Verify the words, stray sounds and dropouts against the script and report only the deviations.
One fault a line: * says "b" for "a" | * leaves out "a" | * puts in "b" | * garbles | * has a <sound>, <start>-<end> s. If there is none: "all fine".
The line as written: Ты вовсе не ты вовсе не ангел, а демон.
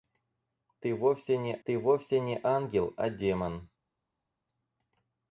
all fine